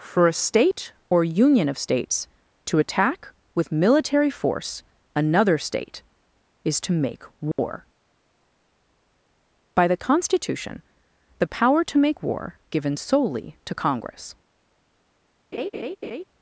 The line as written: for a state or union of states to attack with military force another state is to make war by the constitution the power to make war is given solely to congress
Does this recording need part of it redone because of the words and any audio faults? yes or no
yes